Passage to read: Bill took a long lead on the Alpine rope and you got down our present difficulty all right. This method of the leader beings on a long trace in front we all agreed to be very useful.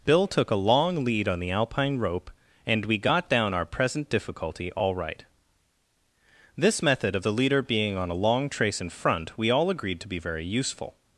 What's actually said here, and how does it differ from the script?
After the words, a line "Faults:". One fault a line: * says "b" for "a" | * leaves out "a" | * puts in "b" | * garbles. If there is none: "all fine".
Bill took a long lead on the Alpine rope and we got down our present difficulty all right. This method of the leader being on a long trace in front we all agreed to be very useful.
Faults:
* says "we" for "you"
* says "being" for "beings"